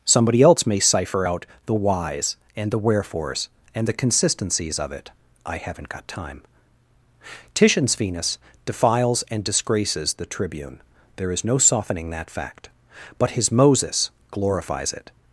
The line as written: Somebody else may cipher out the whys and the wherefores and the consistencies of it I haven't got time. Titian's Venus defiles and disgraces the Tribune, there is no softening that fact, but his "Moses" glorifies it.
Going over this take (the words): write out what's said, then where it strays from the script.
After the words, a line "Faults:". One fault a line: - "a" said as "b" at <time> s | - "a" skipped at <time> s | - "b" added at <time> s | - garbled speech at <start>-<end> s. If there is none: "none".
Somebody else may cipher out the whys and the wherefores and the consistencies of it I haven't got time. Titian's Venus defiles and disgraces the Tribune, there is no softening that fact, but his "Moses" glorifies it.
Faults:
none